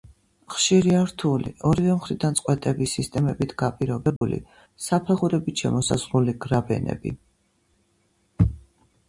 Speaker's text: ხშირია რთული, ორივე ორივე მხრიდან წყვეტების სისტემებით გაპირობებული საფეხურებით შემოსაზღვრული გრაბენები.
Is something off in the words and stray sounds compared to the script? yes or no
yes